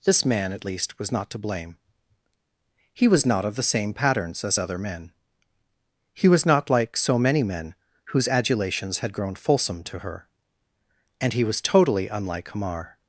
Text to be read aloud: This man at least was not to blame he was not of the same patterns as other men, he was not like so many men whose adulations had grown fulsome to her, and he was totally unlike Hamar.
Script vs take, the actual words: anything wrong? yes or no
no